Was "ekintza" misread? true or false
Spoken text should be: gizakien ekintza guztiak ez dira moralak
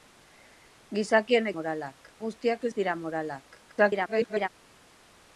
true